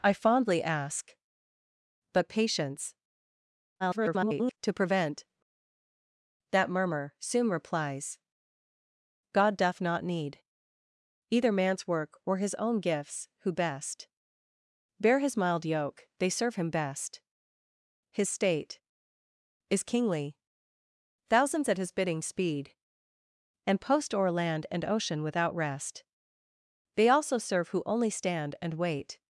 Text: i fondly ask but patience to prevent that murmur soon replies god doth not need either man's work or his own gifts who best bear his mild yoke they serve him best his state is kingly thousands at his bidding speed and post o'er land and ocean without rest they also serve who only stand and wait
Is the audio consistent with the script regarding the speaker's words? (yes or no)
no